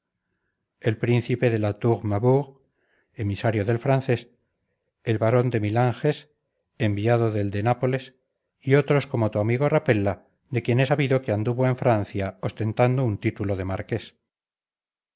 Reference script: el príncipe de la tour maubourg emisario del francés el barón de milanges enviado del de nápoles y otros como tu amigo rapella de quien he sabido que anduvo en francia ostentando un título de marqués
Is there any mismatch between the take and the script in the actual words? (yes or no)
no